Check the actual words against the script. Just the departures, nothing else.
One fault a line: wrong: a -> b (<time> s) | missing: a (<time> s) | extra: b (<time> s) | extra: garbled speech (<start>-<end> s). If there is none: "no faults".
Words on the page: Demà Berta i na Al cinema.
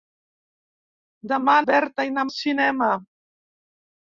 no faults